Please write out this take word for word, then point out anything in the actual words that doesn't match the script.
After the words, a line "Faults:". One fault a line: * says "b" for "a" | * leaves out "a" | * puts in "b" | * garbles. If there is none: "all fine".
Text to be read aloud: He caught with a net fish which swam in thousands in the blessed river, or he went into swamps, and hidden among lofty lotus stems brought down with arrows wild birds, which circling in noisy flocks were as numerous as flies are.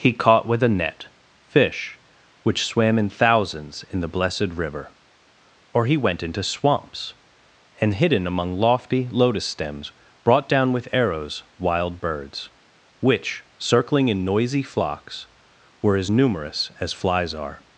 He caught with a net fish which swam in thousands in the blessed river, or he went into swamps, and hidden among lofty lotus stems brought down with arrows wild birds, which circling in noisy flocks were as numerous as flies are.
Faults:
all fine